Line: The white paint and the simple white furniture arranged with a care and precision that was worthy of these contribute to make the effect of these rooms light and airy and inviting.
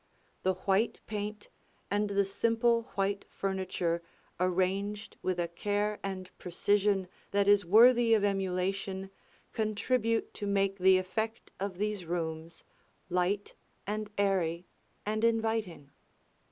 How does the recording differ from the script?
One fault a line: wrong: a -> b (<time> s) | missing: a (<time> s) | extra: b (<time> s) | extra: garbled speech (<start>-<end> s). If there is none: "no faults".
wrong: was -> is (7.5 s)
wrong: these -> emulation (8.2 s)